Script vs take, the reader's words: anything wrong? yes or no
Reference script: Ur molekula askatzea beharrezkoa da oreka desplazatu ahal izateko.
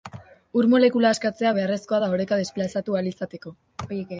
no